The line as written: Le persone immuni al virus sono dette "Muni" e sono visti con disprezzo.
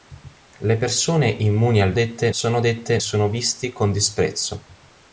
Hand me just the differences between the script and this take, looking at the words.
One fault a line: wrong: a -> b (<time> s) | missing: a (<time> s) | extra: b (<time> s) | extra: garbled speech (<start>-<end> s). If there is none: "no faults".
wrong: virus -> dette (1.9 s)
missing: Muni e (3.0 s)